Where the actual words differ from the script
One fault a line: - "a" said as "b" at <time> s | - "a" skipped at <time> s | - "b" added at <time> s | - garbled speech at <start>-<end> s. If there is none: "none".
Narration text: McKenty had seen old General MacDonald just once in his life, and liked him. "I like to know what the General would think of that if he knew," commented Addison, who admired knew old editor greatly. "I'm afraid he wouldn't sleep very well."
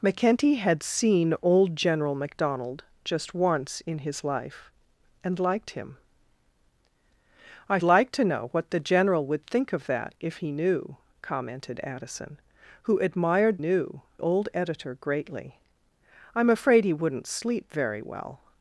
none